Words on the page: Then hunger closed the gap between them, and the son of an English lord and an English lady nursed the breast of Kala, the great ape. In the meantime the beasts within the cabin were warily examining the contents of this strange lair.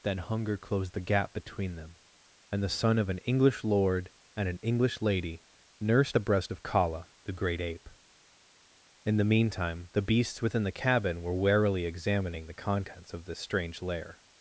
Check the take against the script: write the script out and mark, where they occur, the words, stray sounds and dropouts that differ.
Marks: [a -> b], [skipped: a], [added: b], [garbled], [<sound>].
Then hunger closed the gap between them, and the son of an English lord and an English lady nursed the breast of Kala, the great ape. In the meantime the beasts within the cabin were warily examining the contents of this strange lair.